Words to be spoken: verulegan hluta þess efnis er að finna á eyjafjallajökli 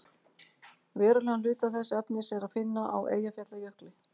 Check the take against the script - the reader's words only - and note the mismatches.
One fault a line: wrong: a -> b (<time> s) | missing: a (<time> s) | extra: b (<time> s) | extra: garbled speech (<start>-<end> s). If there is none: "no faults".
no faults